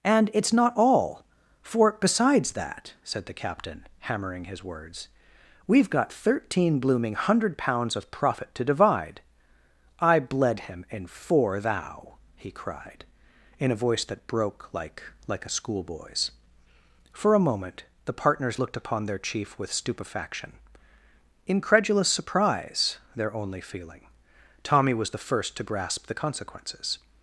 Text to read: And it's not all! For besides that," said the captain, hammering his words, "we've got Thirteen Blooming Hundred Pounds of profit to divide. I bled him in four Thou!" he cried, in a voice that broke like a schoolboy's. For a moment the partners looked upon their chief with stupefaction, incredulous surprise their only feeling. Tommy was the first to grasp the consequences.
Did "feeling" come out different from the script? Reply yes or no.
no